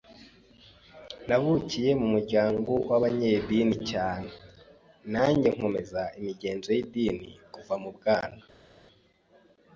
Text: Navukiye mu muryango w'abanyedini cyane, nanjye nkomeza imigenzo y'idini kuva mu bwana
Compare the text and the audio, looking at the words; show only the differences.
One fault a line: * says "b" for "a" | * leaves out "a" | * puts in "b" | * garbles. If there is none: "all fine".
all fine